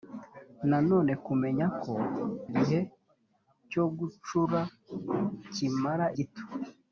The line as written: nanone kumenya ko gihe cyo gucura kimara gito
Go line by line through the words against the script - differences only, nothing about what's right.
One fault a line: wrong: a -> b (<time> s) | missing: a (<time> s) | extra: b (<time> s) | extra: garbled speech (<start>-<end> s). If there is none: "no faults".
no faults